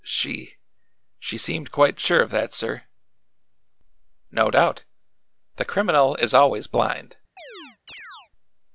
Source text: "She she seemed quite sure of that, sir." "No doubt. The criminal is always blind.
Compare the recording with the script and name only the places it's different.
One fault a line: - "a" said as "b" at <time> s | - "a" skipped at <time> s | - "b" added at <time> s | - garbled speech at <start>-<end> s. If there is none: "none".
none